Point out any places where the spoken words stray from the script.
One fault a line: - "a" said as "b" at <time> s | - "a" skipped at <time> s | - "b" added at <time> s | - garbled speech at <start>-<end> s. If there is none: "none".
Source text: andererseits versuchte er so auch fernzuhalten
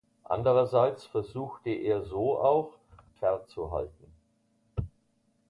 none